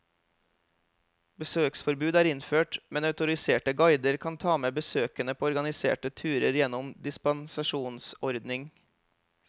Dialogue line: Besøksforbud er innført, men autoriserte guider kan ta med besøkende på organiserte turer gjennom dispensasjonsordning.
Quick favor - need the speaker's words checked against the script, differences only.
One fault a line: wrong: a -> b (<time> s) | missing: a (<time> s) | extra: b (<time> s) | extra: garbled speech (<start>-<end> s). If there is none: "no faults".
no faults